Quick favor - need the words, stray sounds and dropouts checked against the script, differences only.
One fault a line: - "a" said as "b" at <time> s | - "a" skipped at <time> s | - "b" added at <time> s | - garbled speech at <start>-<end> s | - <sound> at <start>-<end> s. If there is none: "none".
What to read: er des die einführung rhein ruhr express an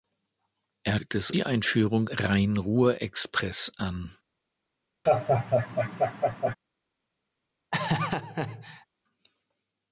- laugh at 5.1-6.6 s
- laugh at 7.7-8.9 s